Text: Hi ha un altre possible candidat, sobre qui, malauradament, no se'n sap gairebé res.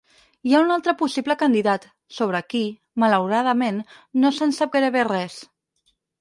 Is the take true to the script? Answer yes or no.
yes